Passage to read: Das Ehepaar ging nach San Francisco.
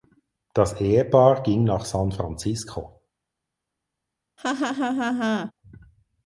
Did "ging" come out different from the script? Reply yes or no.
no